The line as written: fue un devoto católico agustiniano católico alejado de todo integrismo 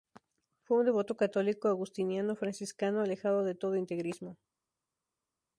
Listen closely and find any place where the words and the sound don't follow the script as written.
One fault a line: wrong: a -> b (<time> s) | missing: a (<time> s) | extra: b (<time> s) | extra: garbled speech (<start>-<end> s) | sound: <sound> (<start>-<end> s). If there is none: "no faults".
wrong: católico -> franciscano (2.4 s)